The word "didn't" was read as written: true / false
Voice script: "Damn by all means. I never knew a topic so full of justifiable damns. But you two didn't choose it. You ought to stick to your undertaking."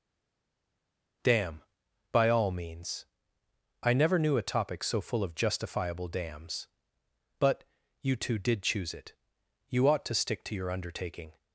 false